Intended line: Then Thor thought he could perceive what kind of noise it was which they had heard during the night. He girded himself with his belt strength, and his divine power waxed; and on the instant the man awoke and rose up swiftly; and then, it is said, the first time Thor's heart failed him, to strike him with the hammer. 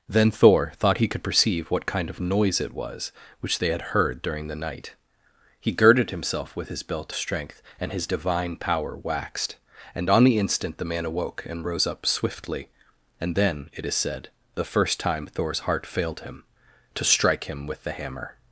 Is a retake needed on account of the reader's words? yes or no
no